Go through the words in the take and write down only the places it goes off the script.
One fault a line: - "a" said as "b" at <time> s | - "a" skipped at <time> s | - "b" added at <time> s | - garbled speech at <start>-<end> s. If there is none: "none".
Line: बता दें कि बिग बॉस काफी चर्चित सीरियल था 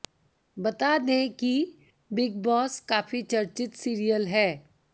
- "था" said as "है" at 4.3 s